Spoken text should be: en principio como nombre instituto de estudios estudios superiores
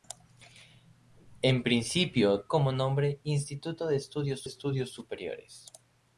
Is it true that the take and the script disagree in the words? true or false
false